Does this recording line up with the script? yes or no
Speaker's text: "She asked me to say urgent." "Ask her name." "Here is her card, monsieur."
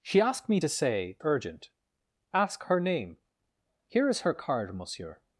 yes